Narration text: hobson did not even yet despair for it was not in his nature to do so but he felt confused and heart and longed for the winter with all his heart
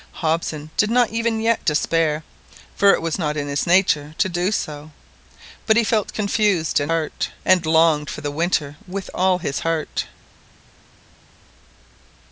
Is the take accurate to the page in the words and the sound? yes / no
yes